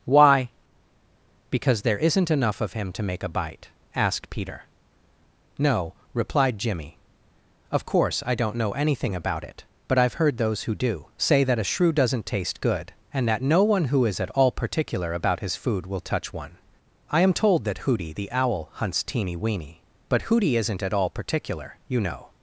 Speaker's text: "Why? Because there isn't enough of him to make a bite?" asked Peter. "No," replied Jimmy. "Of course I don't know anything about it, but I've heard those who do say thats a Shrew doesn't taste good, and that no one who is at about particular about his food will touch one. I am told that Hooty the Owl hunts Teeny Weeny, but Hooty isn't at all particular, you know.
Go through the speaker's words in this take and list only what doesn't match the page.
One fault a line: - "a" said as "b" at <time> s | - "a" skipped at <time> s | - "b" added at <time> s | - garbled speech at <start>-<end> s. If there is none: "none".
- "thats" said as "that" at 11.4 s
- "about" said as "all" at 14.3 s